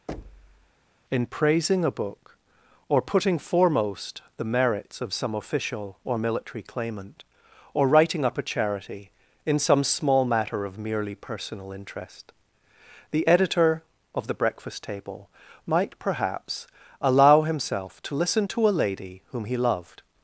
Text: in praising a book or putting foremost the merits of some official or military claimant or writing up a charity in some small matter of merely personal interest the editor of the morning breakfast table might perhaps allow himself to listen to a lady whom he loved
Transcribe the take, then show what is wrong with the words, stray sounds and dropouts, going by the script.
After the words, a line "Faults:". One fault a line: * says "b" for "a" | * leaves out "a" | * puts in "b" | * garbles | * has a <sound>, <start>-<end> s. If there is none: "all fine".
in praising a book or putting foremost the merits of some official or military claimant or writing up a charity in some small matter of merely personal interest the editor of the breakfast table might perhaps allow himself to listen to a lady whom he loved
Faults:
* has a thud, 0.1-0.7 s
* leaves out "morning"